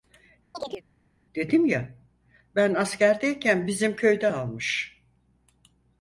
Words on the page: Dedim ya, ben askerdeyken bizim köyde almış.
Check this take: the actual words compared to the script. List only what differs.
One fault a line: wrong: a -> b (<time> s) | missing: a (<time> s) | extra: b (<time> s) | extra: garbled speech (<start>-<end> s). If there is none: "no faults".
no faults